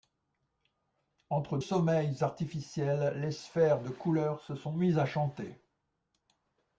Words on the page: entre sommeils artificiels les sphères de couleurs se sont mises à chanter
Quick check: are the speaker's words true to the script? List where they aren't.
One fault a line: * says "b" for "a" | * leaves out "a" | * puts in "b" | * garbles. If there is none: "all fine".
all fine